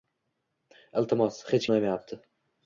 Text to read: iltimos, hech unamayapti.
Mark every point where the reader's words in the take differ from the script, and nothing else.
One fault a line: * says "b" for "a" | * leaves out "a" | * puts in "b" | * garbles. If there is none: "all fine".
all fine